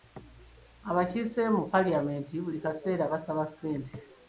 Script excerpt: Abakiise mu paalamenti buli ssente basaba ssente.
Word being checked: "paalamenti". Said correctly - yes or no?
yes